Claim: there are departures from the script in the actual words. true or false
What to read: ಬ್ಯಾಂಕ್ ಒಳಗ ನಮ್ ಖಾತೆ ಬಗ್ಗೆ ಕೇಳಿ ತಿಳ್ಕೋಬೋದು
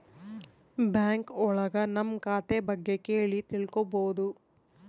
false